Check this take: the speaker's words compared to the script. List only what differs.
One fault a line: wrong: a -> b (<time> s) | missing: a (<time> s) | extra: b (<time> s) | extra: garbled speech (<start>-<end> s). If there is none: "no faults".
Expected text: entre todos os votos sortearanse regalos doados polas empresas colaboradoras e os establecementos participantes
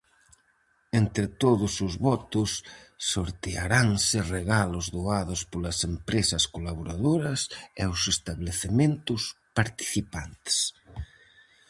no faults